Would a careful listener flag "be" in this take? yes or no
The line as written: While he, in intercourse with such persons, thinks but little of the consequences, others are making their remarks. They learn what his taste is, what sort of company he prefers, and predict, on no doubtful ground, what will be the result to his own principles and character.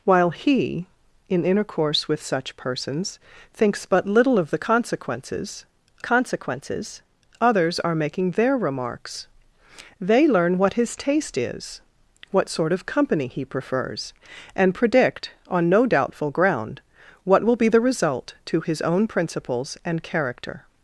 no